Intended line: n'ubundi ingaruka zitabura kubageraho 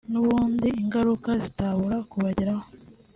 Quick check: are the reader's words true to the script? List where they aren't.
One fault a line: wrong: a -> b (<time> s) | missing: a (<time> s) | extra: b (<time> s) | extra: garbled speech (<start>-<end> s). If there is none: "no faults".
no faults